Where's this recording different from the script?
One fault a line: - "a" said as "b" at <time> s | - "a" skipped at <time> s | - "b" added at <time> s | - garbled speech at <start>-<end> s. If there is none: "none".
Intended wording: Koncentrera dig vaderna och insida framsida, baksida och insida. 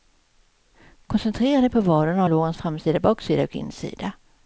- "på" added at 1.7 s
- "insida" said as "lårens" at 2.3 s